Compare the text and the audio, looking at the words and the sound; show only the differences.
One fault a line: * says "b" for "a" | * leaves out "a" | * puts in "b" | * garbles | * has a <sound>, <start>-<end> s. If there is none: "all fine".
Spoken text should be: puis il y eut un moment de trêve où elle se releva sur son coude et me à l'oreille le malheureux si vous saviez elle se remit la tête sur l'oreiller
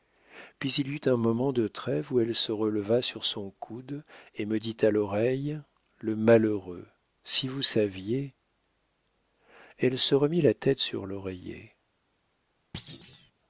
* puts in "dit"
* has a thud, 12.7-13.3 s